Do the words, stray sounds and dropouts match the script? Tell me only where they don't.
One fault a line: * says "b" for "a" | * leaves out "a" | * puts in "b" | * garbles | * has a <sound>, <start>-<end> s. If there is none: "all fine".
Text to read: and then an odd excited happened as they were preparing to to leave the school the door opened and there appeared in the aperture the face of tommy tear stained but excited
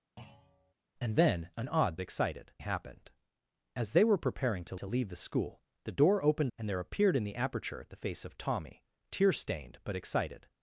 * has a thud, 0.2-0.7 s